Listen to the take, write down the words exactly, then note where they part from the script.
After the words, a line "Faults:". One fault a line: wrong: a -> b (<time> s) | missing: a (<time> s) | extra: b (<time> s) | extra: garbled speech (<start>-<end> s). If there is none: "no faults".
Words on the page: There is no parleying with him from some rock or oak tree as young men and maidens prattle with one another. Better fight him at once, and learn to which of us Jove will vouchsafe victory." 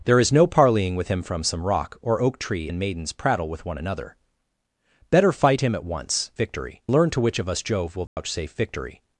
There is no parleying with him from some rock or oak tree and maidens prattle with one another. Better fight him at once, victory learn to which of us Jove will vouchsafe victory."
Faults:
missing: as young men (2.7 s)
wrong: and -> victory (6.3 s)